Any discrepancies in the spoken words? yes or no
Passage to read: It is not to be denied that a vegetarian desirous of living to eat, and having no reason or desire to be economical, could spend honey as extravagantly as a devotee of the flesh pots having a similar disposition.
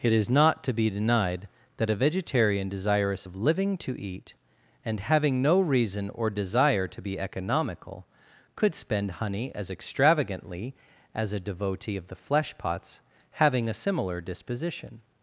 no